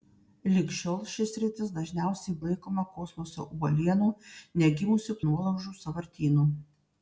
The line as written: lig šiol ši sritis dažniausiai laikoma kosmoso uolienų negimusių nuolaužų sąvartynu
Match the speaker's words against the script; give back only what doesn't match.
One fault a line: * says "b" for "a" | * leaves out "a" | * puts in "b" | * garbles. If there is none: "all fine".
all fine